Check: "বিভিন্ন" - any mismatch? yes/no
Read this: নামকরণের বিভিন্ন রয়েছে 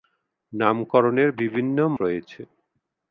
no